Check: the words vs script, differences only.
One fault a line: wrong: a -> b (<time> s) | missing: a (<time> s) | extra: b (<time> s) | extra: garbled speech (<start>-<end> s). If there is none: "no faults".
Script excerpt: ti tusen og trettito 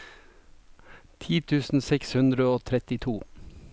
extra: seks hundre (1.9 s)